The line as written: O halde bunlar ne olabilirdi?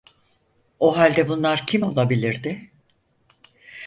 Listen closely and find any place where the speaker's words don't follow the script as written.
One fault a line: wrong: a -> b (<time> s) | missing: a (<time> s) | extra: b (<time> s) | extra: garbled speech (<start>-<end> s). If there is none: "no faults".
wrong: ne -> kim (1.7 s)